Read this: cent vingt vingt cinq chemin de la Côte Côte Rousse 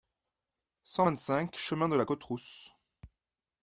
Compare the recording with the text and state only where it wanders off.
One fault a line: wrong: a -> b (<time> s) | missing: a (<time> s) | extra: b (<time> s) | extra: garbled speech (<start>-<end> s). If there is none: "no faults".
missing: vingt (1.2 s)
missing: Côte (2.2 s)